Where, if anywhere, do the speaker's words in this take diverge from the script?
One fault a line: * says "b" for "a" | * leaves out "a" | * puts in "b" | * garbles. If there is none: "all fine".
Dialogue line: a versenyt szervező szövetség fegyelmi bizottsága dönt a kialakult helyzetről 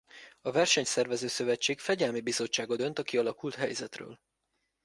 all fine